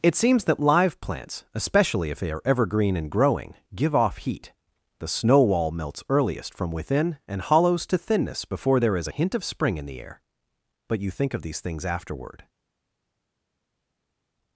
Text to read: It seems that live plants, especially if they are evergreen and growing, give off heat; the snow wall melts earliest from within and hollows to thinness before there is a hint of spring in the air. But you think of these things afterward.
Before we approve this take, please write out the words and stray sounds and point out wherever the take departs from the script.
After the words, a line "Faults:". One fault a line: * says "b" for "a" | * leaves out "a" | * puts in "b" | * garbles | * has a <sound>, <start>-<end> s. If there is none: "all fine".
It seems that live plants, especially if they are evergreen and growing, give off heat; the snow wall melts earliest from within and hollows to thinness before there is a hint of spring in the air. But you think of these things afterward.
Faults:
all fine